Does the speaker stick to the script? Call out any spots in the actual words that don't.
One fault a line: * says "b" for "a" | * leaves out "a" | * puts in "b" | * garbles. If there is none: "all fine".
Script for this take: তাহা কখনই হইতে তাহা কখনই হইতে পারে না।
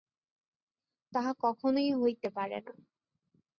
* leaves out "তাহা কখনই হইতে"